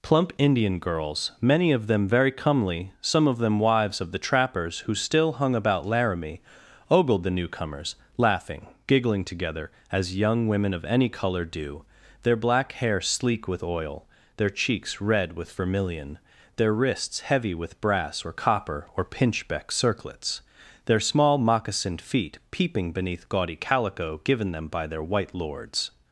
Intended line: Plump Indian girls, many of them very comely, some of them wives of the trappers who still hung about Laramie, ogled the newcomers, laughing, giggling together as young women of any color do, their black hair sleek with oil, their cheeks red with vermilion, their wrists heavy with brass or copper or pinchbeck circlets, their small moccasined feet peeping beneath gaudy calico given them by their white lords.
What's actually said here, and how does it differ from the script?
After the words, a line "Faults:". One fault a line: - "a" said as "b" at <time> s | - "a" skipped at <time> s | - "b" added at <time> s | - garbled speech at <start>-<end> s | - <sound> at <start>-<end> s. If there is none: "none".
Plump Indian girls, many of them very comely, some of them wives of the trappers who still hung about Laramie, ogled the newcomers, laughing, giggling together as young women of any color do, their black hair sleek with oil, their cheeks red with vermilion, their wrists heavy with brass or copper or pinchbeck circlets, their small moccasined feet peeping beneath gaudy calico given them by their white lords.
Faults:
none